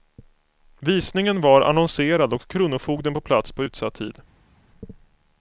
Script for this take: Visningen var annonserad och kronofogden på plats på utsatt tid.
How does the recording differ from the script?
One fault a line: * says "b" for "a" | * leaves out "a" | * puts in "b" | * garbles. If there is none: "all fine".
all fine